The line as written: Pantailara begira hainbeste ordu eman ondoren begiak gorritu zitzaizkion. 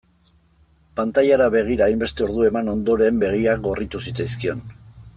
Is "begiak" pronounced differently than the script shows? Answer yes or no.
no